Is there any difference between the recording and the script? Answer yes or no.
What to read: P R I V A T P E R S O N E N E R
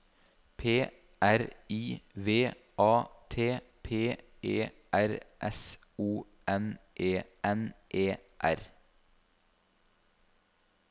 no